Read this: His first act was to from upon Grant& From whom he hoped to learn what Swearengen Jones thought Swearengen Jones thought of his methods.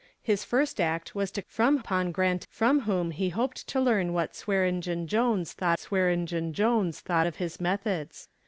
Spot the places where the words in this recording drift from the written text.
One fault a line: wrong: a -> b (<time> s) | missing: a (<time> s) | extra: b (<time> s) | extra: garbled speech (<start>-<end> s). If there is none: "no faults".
no faults